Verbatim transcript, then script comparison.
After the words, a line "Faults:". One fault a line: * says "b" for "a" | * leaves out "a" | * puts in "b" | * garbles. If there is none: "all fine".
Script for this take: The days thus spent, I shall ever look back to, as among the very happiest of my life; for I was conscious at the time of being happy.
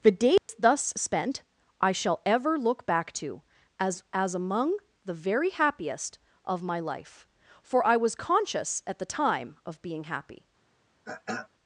The days thus spent, I shall ever look back to, as as among the very happiest of my life; for I was conscious at the time of being happy.
Faults:
* puts in "as"